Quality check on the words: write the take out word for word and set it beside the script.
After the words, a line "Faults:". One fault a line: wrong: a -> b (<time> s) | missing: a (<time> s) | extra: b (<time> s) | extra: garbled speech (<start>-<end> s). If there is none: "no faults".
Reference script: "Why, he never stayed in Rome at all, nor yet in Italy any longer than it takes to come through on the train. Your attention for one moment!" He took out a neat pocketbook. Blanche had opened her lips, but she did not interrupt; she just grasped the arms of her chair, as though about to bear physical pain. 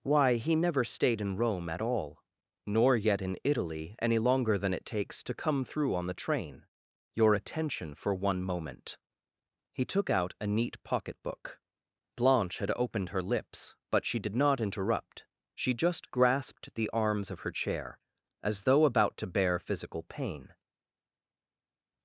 "Why, he never stayed in Rome at all, nor yet in Italy any longer than it takes to come through on the train. Your attention for one moment!" He took out a neat pocketbook. Blanche had opened her lips, but she did not interrupt; she just grasped the arms of her chair, as though about to bear physical pain.
Faults:
no faults